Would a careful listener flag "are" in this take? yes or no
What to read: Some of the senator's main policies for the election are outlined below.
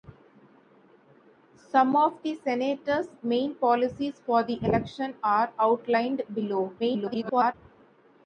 no